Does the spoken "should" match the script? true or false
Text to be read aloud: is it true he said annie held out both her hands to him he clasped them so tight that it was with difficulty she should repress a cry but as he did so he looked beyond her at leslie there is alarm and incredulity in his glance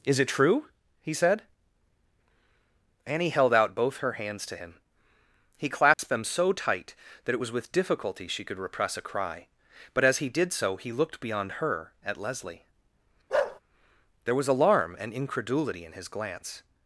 false